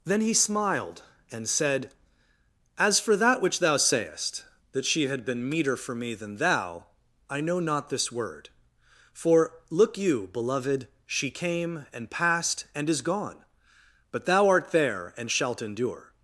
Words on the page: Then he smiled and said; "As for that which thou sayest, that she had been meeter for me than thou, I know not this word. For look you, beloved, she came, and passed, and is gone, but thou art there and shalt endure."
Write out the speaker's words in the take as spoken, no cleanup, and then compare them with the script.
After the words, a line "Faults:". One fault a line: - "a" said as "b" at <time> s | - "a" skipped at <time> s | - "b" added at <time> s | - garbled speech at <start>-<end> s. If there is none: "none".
Then he smiled and said; "As for that which thou sayest, that she had been meeter for me than thou, I know not this word. For look you, beloved, she came, and passed, and is gone, but thou art there and shalt endure."
Faults:
none